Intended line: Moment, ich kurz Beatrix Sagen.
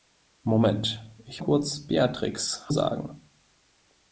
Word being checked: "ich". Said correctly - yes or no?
yes